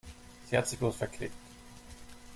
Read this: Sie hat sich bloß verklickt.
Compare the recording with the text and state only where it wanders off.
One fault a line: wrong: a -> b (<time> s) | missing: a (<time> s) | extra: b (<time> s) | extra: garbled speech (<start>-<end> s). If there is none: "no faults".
no faults